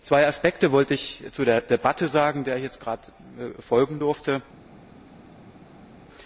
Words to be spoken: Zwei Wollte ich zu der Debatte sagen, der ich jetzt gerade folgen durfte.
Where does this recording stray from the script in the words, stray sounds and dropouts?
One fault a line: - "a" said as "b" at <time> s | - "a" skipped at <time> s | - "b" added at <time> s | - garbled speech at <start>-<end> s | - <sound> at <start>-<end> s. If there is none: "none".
- "Aspekte" added at 0.2 s